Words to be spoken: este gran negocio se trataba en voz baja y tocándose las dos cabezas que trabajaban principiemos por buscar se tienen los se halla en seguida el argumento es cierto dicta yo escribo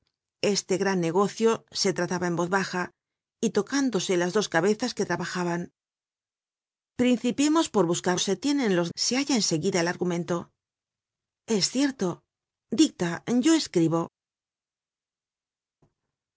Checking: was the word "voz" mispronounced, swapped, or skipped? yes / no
no